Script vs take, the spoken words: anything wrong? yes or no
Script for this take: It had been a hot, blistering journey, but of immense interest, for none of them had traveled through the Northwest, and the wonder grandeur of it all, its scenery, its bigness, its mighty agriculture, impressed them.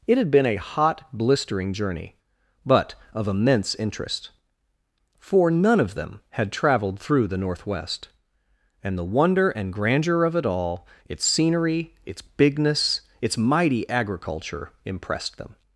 yes